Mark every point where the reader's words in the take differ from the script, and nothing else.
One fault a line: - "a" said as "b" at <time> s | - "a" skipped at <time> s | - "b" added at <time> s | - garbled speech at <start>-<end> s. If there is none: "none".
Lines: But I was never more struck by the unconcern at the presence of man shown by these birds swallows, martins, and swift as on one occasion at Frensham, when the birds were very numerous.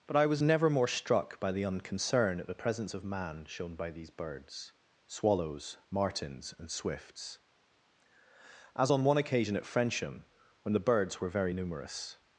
- "swift" said as "swifts" at 6.7 s